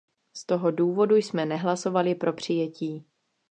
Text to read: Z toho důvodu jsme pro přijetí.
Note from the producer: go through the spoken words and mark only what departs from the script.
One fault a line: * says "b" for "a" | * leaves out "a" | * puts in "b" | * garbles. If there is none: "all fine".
* puts in "nehlasovali"